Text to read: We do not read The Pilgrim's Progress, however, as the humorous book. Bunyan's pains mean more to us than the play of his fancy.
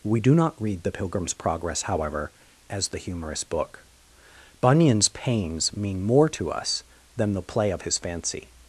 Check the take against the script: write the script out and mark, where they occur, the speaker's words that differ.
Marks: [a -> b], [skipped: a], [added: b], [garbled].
We do not read The Pilgrim's Progress, however, as the humorous book. Bunyan's pains mean more to us than the play of his fancy.